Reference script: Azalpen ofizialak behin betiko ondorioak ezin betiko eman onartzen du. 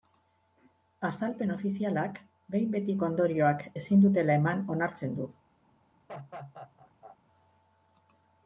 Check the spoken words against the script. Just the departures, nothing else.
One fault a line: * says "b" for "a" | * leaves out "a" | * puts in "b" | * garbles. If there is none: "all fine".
* says "dutela" for "betiko"